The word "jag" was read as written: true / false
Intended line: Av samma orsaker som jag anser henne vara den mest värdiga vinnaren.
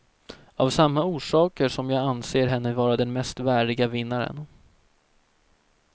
true